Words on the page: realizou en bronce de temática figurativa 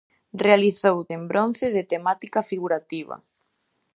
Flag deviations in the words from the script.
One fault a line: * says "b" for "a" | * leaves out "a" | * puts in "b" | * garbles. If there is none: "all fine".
all fine